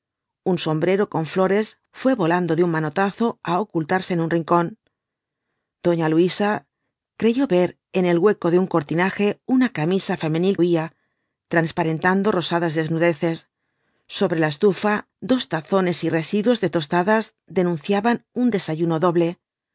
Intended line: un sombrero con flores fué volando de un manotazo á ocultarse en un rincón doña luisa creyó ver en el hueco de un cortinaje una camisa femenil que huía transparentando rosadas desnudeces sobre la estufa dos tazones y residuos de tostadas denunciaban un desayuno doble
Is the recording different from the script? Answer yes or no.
yes